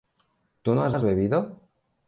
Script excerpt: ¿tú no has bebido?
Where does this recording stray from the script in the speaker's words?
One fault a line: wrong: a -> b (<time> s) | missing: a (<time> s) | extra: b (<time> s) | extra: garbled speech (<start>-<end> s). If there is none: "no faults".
extra: has (0.9 s)